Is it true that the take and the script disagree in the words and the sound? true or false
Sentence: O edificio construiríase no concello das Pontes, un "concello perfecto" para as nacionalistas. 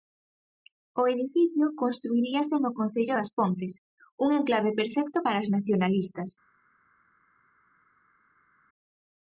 true